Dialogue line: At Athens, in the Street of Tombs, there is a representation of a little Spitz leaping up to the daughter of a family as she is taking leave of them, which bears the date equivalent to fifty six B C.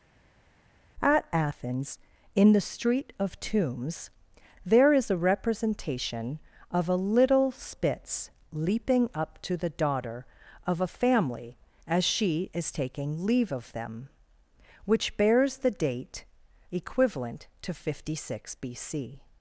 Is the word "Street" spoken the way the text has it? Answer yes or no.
yes